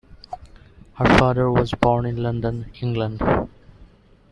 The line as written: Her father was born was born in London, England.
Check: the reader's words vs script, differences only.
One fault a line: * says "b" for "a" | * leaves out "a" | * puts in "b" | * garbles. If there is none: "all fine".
* leaves out "was born"